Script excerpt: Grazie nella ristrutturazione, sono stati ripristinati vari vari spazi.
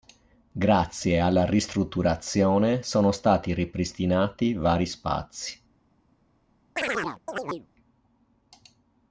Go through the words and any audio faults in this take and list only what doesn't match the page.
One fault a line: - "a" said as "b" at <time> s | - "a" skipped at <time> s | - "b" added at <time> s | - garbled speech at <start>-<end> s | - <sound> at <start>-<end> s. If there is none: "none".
- "nella" said as "alla" at 1.2 s
- "vari" skipped at 4.9 s
- chirp at 6.8-7.7 s